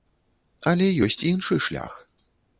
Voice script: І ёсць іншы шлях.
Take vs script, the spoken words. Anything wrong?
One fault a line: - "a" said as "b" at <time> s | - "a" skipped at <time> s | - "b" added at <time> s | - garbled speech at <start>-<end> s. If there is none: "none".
- "І" said as "Але" at 0.7 s